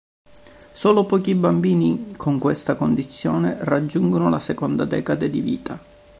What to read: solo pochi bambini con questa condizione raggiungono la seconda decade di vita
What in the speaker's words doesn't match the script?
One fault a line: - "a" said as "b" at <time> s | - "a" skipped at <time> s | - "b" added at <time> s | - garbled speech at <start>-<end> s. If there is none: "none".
none